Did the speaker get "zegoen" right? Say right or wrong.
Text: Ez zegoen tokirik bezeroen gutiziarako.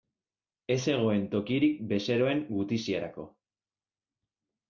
right